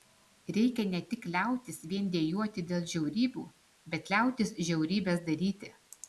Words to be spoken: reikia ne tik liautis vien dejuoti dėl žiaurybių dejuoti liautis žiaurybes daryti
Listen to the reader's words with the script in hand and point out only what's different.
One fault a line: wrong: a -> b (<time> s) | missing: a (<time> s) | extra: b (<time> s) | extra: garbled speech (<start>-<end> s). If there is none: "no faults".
wrong: dejuoti -> bet (4.0 s)